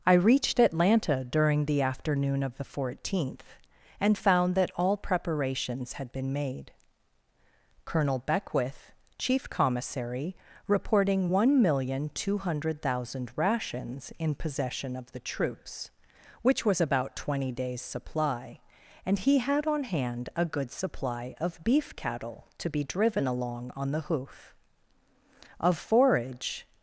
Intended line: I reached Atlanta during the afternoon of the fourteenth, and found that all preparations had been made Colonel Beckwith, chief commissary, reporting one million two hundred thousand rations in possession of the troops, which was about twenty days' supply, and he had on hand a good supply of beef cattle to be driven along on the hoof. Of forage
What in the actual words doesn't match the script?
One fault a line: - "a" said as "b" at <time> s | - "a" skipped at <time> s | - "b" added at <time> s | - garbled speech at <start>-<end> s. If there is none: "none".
none